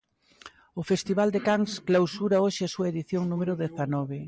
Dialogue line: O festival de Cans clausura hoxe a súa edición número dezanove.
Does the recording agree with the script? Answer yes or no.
yes